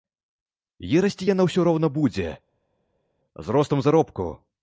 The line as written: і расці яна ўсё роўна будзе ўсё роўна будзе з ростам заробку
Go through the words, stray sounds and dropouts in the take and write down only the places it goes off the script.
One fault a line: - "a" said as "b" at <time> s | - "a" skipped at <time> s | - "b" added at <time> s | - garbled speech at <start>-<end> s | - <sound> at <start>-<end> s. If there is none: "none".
- "ўсё роўна будзе" skipped at 2.3 s